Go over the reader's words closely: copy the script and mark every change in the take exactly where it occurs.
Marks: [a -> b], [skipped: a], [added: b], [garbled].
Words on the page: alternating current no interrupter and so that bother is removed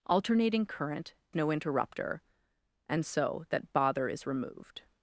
alternating current no interrupter and so that bother is removed